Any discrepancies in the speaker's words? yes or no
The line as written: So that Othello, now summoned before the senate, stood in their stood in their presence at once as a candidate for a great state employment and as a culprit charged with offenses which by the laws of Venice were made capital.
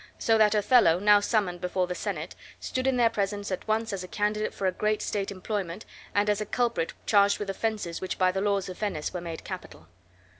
yes